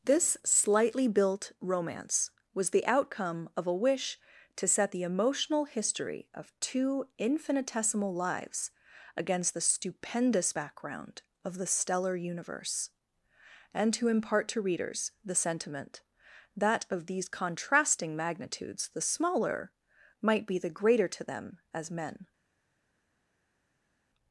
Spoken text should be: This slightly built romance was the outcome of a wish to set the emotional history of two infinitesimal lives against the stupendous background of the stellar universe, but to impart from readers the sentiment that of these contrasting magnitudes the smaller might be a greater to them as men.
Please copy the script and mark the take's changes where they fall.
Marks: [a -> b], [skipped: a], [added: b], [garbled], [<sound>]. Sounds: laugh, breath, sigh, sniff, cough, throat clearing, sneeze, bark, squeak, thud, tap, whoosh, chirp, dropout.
This slightly built romance was the outcome of a wish to set the emotional history of two infinitesimal lives against the stupendous background of the stellar universe, [but -> and] to impart [from -> to] readers the sentiment that of these contrasting magnitudes the smaller might be [a -> the] greater to them as men.